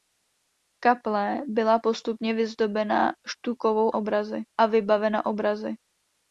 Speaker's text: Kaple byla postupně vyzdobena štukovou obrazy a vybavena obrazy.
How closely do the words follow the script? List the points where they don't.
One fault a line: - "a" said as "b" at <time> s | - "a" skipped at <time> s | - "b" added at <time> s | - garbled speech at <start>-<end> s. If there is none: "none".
none